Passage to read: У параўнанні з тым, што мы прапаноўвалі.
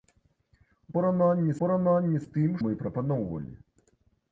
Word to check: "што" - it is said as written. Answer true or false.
false